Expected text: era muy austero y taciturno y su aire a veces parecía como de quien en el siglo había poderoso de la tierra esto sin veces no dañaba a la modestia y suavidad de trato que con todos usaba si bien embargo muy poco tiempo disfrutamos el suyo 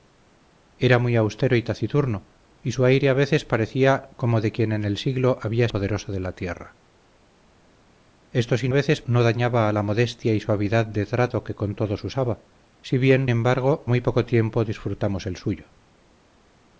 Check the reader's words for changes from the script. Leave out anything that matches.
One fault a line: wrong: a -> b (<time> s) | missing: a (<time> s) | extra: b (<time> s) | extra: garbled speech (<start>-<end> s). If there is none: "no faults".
no faults